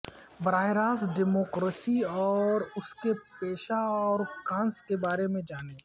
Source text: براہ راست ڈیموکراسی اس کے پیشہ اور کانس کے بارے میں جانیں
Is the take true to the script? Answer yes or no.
no